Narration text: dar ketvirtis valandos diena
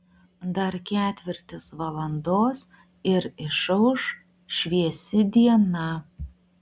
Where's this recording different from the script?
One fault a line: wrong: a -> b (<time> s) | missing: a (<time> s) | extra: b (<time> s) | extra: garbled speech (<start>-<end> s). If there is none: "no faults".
extra: ir išauš šviesi (3.1 s)